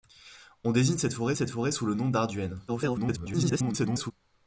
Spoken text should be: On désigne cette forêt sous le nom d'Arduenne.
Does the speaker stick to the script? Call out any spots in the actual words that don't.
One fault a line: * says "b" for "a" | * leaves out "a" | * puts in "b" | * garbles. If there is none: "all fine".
* puts in "cette forêt"
* garbles